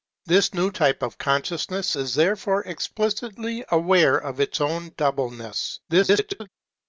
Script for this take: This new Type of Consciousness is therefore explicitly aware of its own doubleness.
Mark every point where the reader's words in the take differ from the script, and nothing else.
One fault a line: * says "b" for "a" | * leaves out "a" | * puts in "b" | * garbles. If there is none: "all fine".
* garbles